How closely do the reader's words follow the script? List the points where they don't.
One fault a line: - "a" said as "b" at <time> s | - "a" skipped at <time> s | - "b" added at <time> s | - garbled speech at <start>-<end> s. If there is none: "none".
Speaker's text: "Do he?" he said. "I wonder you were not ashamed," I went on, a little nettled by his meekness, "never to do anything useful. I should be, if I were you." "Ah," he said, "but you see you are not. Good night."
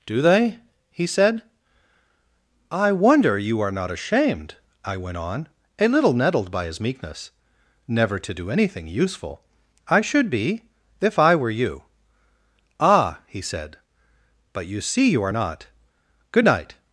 - "he" said as "they" at 0.2 s
- "were" said as "are" at 3.6 s